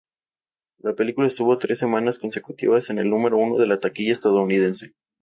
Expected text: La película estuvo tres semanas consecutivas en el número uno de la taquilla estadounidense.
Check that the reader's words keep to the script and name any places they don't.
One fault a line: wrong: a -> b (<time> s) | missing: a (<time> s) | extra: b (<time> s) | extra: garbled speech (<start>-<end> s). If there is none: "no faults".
no faults